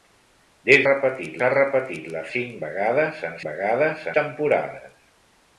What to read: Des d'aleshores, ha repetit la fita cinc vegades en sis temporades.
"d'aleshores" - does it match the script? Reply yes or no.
no